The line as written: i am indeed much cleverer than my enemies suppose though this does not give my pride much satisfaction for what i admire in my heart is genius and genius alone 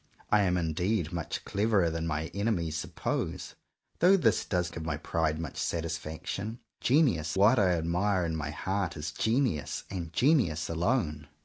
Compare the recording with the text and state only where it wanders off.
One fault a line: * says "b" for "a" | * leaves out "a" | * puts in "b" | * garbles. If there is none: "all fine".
* leaves out "not"
* says "genius" for "for"